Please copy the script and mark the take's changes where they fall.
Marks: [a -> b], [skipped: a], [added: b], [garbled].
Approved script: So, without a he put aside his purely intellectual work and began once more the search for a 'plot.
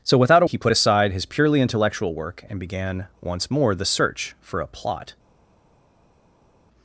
So, without a he put aside his purely intellectual work and began once more the search for a 'plot.